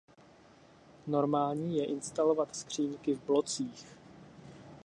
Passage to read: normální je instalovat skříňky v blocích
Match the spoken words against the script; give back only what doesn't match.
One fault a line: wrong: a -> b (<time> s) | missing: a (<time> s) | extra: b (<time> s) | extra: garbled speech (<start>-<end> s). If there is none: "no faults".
no faults